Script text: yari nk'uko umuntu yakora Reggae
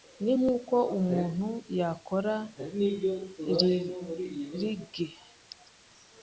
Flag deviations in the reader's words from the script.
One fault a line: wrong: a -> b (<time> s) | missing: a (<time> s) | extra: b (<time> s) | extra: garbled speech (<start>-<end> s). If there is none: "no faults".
wrong: yari -> ni (0.2 s)